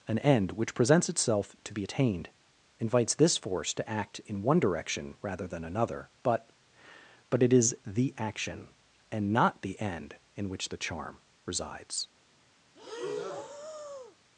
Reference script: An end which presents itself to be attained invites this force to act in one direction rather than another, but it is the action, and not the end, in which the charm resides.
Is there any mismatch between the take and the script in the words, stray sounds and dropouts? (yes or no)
yes